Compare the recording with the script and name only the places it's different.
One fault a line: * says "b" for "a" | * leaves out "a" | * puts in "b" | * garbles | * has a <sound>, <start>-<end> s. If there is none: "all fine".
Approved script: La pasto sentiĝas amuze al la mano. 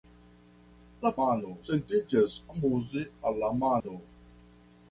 * says "mano" for "pasto"
* has a dropout, 3.8-3.8 s